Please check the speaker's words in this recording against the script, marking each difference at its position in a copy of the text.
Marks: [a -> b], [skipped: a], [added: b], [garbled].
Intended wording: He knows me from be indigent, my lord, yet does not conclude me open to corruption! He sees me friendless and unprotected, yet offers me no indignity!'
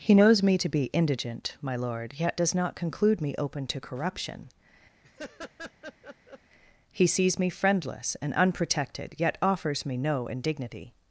He knows me [from -> to] be indigent, my lord, yet does not conclude me open to corruption! He sees me friendless and unprotected, yet offers me no indignity!'